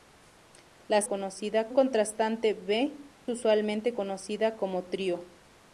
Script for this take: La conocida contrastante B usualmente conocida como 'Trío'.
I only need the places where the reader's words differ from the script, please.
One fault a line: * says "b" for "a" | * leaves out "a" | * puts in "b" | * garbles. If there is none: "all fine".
all fine